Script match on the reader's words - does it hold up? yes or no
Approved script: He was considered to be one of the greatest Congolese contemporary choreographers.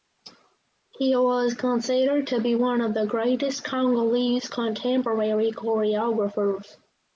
yes